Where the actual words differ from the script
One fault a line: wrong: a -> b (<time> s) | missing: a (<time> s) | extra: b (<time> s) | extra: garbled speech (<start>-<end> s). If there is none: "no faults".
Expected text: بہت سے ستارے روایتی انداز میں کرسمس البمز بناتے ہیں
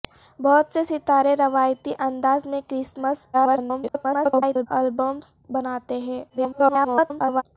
extra: garbled speech (3.3-4.7 s)
extra: garbled speech (6.3-7.4 s)